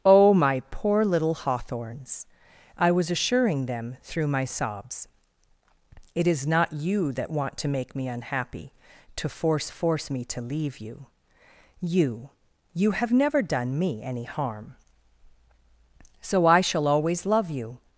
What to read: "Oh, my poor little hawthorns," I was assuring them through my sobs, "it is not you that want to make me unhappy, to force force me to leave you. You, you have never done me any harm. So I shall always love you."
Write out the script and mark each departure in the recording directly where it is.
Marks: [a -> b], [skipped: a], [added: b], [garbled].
"Oh, my poor little hawthorns," I was assuring them through my sobs, "it is not you that want to make me unhappy, to force force me to leave you. You, you have never done me any harm. So I shall always love you."